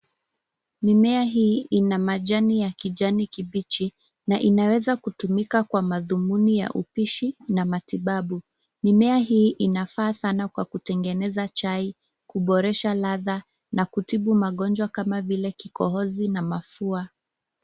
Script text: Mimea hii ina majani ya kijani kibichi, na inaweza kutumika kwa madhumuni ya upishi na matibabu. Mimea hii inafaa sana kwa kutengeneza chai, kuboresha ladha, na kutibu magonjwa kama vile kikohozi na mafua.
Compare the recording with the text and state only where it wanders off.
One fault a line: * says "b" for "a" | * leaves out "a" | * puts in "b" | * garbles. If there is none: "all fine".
all fine